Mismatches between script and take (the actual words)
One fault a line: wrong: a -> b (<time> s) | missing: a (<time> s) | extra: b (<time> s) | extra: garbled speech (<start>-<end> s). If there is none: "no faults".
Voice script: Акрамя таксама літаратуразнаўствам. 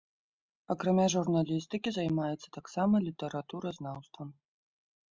extra: журналістыкі займаецца (1.1 s)